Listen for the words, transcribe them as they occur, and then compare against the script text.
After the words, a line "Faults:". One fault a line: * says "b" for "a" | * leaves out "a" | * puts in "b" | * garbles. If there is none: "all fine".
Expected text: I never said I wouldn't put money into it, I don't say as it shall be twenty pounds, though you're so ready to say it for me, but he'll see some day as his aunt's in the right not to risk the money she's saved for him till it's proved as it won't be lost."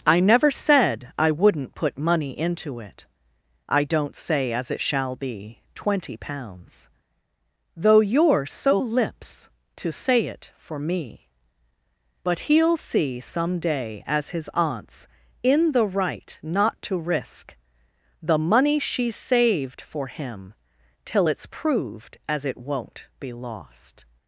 I never said I wouldn't put money into it, I don't say as it shall be twenty pounds, though you're so lips to say it for me, but he'll see some day as his aunt's in the right not to risk the money she's saved for him till it's proved as it won't be lost."
Faults:
* says "lips" for "ready"